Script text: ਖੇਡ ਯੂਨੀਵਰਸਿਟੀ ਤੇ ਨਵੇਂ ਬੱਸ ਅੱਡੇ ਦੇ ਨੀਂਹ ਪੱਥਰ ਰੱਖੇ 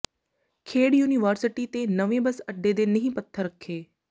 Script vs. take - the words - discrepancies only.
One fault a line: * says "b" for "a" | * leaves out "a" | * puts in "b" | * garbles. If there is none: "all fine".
all fine